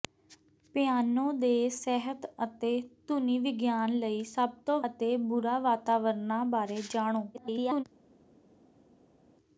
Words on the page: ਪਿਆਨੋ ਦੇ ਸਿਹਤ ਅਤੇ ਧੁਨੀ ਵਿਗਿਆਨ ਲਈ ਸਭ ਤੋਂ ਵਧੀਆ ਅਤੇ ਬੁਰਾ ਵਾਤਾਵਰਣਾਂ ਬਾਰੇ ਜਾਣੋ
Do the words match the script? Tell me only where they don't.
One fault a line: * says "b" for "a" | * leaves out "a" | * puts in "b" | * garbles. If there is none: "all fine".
* leaves out "ਵਧੀਆ"
* garbles